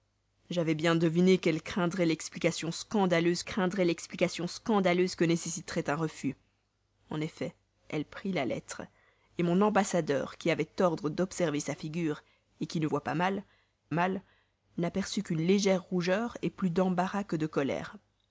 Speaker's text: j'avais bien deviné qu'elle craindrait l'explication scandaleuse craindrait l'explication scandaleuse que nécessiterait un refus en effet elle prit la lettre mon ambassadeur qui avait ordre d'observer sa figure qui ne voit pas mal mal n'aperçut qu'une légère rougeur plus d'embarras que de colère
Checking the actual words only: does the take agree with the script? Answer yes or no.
yes